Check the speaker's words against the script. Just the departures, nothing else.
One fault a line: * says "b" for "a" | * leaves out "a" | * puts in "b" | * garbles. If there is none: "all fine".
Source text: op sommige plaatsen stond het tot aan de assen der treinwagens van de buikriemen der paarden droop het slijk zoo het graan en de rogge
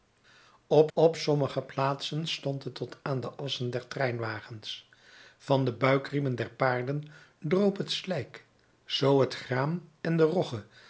* puts in "op"